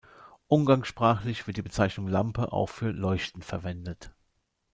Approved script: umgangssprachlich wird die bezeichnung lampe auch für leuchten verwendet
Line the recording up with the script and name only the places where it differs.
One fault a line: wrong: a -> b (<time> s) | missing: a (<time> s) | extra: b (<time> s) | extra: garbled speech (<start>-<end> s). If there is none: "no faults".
no faults